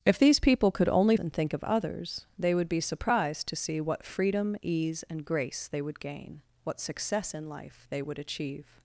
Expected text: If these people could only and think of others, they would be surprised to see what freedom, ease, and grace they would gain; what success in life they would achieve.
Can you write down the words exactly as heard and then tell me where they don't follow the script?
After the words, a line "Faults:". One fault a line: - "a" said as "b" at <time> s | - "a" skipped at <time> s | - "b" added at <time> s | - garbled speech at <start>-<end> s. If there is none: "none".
If these people could only and think of others, they would be surprised to see what freedom, ease, and grace they would gain; what success in life they would achieve.
Faults:
none